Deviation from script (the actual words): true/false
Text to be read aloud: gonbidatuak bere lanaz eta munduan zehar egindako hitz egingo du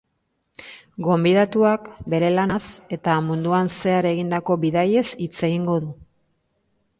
true